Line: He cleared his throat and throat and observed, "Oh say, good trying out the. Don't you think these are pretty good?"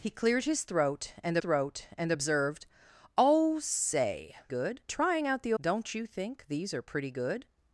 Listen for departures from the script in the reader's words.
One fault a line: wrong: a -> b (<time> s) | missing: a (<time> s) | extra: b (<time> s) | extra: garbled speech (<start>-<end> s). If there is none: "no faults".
no faults